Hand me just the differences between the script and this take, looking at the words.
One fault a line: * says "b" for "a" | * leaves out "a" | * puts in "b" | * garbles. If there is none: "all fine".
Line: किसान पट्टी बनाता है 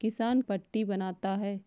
all fine